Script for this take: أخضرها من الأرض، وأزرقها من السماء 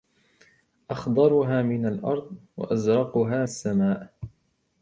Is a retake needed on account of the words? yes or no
yes